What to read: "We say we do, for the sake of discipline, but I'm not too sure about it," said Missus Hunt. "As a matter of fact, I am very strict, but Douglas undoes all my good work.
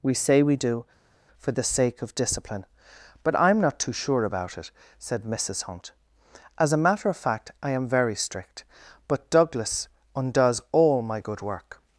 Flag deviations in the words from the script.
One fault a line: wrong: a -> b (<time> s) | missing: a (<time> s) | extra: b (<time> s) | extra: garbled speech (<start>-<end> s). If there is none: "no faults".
no faults